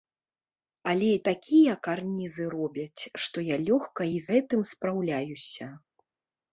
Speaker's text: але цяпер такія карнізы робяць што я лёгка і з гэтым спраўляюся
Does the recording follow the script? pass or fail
fail